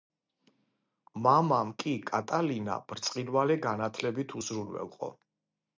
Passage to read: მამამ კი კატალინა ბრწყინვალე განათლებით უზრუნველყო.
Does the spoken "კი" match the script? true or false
true